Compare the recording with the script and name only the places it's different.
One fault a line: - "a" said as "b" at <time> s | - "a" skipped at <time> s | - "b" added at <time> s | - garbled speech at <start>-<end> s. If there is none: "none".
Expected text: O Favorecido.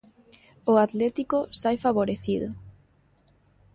- "Atlético sae" added at 0.8 s